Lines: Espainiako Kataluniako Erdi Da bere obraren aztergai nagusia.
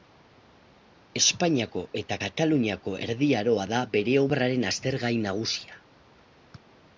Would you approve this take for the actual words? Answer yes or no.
no